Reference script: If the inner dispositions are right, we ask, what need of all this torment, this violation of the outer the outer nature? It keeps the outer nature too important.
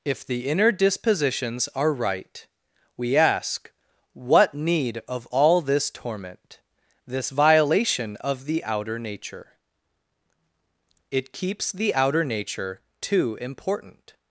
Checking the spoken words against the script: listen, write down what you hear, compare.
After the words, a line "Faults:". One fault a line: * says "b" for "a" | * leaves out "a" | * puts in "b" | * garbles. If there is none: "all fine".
If the inner dispositions are right, we ask, what need of all this torment, this violation of the outer nature? It keeps the outer nature too important.
Faults:
* leaves out "the outer"